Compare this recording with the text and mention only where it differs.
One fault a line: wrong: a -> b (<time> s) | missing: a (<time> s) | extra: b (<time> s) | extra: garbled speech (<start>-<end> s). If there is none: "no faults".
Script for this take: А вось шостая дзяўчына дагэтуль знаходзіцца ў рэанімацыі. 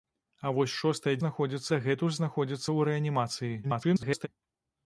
wrong: дзяўчына -> знаходзіцца (1.2 s)
extra: garbled speech (3.6-4.3 s)